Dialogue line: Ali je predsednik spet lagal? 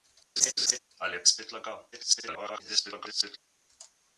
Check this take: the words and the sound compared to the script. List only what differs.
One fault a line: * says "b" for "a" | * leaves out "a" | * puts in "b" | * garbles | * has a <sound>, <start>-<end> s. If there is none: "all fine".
* has a laugh, 0.4-0.8 s
* leaves out "predsednik"
* garbles